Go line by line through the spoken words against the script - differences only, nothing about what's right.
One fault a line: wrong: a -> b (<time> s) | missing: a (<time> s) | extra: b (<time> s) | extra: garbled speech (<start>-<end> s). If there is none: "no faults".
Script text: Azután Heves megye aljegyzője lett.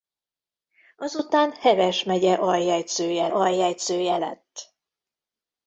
extra: aljegyzője (3.3 s)